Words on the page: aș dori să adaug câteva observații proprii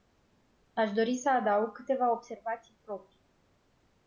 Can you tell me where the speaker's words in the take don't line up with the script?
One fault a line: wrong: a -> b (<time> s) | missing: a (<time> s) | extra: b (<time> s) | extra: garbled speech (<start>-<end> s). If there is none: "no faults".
no faults